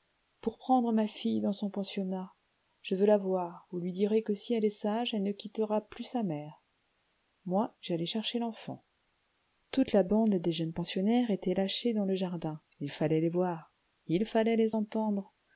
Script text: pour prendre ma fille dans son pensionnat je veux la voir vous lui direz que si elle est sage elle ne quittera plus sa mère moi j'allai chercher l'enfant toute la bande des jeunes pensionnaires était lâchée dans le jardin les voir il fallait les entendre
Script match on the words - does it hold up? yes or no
no